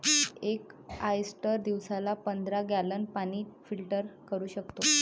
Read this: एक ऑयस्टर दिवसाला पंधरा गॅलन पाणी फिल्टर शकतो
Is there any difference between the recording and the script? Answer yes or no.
yes